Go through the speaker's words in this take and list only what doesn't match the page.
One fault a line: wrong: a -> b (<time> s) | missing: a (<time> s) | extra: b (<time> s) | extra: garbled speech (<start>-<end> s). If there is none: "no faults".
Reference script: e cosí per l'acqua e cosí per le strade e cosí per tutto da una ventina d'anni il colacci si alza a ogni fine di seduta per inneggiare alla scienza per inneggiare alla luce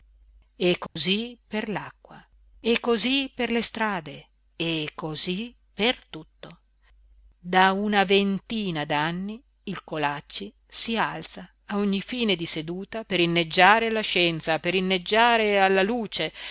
no faults